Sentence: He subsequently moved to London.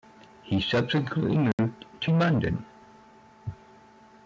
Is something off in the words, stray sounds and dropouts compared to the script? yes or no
yes